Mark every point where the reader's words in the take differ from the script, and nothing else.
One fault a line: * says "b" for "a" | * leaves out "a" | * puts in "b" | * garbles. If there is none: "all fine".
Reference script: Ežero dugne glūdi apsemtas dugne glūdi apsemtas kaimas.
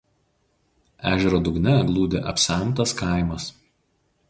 * leaves out "dugne glūdi apsemtas"